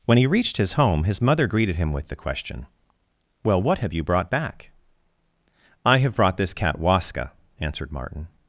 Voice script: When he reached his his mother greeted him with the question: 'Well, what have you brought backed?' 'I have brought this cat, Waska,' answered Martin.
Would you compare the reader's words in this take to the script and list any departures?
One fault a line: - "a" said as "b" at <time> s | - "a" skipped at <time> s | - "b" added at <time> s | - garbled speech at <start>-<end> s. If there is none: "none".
- "home" added at 0.7 s
- "backed" said as "back" at 4.3 s